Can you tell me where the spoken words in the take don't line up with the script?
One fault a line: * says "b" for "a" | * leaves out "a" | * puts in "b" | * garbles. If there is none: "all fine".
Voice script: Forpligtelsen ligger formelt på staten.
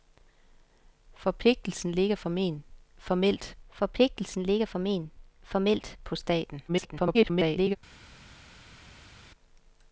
* puts in "forpligtelsen ligger formelt"
* garbles